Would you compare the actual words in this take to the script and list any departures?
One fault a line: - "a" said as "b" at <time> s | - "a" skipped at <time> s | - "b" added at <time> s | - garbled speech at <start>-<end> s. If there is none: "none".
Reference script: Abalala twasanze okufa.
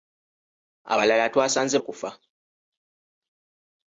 none